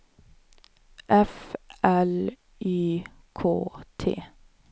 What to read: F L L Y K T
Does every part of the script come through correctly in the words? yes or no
no